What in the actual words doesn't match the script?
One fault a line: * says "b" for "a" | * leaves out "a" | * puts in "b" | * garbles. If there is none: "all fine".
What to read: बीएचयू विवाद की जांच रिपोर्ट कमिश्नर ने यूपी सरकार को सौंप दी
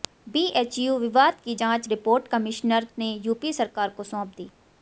all fine